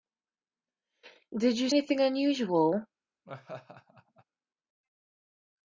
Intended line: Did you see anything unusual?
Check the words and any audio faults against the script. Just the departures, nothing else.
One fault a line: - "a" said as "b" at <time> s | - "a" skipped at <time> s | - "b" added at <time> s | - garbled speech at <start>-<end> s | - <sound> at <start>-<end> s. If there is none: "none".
- "see" skipped at 1.7 s
- laugh at 3.2-4.2 s